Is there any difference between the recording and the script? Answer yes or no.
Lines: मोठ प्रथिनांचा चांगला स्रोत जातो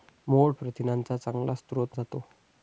no